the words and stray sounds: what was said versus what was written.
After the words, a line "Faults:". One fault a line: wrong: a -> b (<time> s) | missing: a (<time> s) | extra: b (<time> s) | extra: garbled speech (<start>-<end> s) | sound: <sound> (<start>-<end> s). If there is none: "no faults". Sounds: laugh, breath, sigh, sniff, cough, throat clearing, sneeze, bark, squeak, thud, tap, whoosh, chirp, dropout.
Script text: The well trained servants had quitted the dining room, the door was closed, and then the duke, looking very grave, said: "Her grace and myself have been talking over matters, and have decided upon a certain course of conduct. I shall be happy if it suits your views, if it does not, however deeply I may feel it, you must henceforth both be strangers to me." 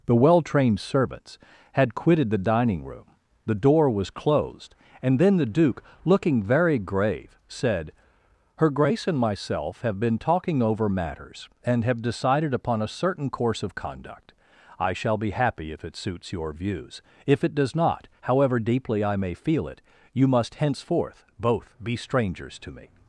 The well trained servants had quitted the dining room, the door was closed, and then the duke, looking very grave, said: "Her grace and myself have been talking over matters, and have decided upon a certain course of conduct. I shall be happy if it suits your views, if it does not, however deeply I may feel it, you must henceforth both be strangers to me."
Faults:
no faults